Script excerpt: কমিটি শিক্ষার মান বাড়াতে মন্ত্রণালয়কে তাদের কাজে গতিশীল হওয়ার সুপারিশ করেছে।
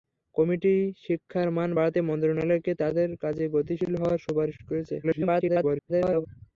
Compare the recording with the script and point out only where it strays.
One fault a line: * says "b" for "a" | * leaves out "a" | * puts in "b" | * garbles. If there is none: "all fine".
* garbles